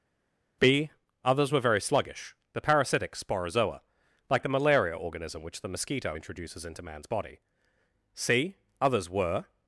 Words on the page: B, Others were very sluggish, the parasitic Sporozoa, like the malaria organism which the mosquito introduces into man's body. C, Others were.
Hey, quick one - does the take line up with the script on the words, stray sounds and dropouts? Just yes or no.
yes